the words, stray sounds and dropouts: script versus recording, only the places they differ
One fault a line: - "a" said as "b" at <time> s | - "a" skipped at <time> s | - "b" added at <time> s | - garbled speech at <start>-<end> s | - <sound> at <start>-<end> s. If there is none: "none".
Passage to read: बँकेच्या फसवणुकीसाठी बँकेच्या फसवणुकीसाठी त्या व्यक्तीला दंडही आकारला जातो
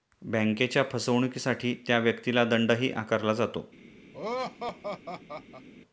- "बँकेच्या फसवणुकीसाठी" skipped at 1.7 s
- laugh at 4.1-5.7 s